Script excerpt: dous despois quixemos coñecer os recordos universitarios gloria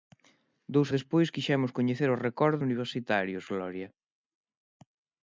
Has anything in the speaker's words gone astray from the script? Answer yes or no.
no